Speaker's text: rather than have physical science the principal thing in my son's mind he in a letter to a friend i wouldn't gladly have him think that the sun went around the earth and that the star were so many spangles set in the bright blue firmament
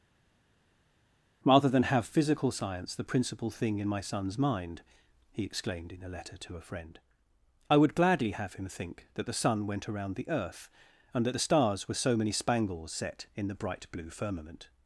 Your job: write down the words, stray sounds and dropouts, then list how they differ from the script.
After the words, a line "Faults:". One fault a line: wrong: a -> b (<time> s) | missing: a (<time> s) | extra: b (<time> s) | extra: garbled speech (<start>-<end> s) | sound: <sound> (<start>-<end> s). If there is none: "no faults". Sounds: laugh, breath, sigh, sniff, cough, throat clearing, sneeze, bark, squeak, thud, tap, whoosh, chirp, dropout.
rather than have physical science the principal thing in my son's mind he exclaimed in a letter to a friend i would gladly have him think that the sun went around the earth and that the stars were so many spangles set in the bright blue firmament
Faults:
extra: exclaimed (5.4 s)
wrong: wouldn't -> would (7.8 s)
wrong: star -> stars (11.4 s)